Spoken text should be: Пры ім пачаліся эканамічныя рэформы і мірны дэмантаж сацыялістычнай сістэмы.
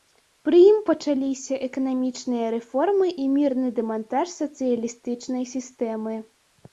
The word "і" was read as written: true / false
true